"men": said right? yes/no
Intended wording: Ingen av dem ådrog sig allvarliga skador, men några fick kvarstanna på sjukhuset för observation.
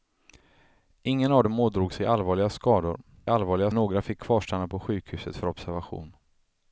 no